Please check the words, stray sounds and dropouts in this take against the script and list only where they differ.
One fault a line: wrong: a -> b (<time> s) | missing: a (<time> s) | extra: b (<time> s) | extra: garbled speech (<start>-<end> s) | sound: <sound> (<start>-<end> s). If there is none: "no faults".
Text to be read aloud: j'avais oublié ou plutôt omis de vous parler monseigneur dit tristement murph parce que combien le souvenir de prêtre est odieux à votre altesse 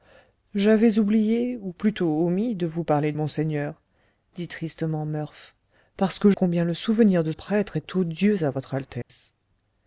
sound: dropout (9.0-9.1 s)